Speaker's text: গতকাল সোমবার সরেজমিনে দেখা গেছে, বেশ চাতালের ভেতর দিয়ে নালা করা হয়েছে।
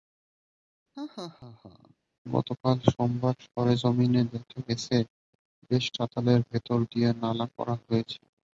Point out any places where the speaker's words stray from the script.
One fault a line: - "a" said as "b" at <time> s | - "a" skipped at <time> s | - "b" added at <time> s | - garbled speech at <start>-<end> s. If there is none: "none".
none